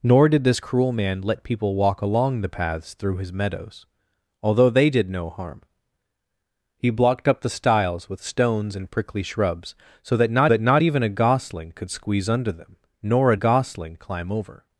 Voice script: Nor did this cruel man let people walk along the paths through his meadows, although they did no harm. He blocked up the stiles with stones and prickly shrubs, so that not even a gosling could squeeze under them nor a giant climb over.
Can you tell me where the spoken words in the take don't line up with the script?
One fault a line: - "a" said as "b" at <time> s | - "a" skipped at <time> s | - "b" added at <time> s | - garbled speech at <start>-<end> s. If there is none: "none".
- "that not" added at 10.5 s
- "giant" said as "gosling" at 13.3 s